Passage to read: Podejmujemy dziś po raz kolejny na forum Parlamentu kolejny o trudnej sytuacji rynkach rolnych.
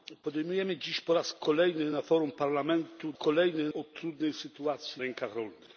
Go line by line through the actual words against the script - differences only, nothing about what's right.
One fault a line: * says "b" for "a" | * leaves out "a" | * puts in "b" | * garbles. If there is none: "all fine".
all fine